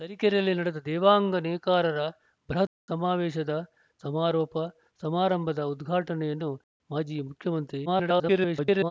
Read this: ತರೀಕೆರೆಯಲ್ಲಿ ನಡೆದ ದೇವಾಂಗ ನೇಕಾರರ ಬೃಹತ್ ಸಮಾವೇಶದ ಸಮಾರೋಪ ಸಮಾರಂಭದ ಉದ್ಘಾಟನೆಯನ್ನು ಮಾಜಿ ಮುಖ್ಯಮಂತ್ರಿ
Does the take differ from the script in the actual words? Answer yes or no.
yes